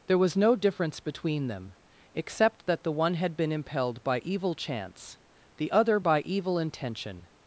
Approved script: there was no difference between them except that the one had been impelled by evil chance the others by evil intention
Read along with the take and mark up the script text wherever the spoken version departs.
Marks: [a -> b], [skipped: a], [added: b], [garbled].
there was no difference between them except that the one had been impelled by evil chance the [others -> other] by evil intention